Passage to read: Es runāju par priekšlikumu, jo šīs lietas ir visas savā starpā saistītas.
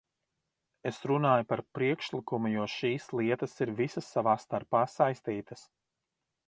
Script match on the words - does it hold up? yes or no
yes